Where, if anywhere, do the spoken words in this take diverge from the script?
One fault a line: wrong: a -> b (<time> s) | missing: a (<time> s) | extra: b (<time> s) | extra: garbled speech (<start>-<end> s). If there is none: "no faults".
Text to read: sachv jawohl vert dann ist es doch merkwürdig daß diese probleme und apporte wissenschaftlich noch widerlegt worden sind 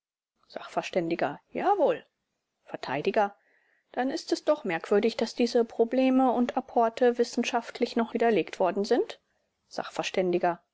no faults